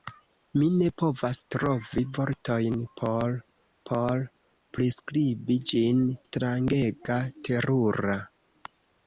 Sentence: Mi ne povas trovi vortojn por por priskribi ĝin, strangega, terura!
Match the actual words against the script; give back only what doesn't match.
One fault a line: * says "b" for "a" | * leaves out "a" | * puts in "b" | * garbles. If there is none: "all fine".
all fine